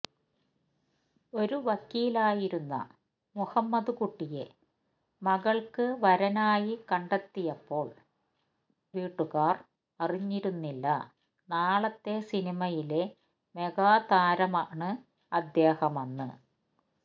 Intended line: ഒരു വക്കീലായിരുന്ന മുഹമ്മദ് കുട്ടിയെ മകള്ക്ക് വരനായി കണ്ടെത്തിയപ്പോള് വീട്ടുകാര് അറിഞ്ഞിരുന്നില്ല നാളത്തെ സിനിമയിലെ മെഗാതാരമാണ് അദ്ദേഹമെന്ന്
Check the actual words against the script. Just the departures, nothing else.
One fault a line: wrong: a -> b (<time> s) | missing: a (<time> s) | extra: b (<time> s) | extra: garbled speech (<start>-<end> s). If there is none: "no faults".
no faults